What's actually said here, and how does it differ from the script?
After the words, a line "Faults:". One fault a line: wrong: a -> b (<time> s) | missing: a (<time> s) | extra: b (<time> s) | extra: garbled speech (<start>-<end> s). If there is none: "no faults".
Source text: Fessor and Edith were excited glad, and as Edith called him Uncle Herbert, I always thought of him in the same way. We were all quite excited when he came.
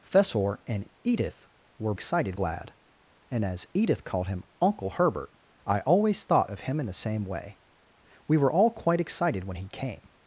Fessor and Edith were excited glad, and as Edith called him Uncle Herbert, I always thought of him in the same way. We were all quite excited when he came.
Faults:
no faults